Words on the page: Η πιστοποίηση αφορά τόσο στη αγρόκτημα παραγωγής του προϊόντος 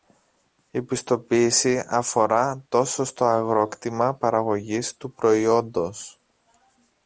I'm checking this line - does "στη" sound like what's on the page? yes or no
no